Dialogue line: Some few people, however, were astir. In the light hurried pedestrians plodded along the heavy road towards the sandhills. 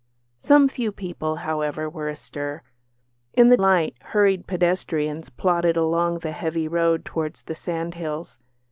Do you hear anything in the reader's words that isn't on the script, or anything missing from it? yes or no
no